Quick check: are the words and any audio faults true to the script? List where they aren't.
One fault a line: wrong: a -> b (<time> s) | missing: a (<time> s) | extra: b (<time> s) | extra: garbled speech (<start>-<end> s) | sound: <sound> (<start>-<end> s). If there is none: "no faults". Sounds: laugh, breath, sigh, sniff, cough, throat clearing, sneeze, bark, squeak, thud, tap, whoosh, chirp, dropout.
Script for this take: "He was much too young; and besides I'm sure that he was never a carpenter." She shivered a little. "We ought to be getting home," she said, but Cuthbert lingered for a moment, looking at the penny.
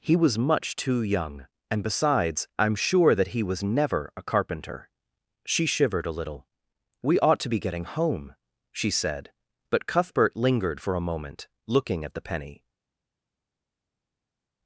no faults